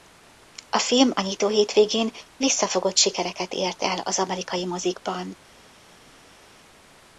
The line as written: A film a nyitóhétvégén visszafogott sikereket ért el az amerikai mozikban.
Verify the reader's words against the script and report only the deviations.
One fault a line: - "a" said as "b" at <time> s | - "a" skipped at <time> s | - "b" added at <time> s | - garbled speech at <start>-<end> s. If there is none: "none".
none